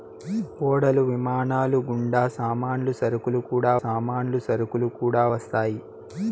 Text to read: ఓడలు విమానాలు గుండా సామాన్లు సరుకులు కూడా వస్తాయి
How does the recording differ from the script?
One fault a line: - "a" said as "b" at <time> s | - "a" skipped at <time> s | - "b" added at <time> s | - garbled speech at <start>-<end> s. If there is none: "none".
- "సామాన్లు సరుకులు కూడా" added at 3.8 s